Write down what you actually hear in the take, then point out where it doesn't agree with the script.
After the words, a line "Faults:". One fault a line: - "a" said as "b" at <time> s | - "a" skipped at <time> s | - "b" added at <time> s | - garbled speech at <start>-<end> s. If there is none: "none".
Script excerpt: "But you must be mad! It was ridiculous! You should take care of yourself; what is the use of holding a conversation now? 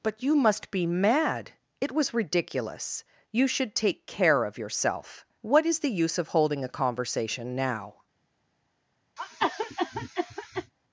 "But you must be mad! It was ridiculous! You should take care of yourself; what is the use of holding a conversation now?
Faults:
none